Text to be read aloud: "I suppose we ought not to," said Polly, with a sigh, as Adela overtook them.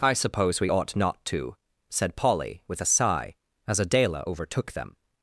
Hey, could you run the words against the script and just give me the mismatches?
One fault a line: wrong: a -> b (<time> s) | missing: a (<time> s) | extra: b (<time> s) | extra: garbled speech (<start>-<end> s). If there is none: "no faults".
no faults